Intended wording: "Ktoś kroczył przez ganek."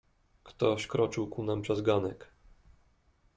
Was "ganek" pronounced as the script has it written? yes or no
yes